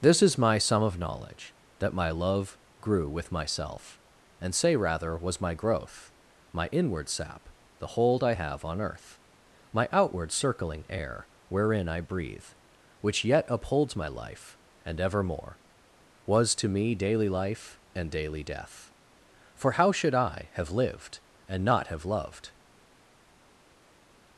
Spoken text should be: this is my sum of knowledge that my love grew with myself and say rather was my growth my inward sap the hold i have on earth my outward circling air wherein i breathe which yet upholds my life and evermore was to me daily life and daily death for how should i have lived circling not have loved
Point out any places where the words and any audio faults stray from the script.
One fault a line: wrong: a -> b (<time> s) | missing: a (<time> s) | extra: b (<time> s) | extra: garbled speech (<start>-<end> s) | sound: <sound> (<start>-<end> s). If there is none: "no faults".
wrong: circling -> and (21.5 s)